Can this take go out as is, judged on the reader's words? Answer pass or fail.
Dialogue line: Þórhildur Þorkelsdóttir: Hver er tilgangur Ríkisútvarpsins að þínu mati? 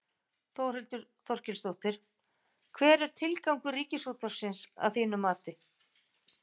pass